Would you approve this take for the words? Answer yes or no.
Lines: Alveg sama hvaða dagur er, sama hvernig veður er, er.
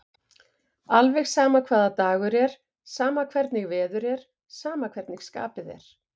no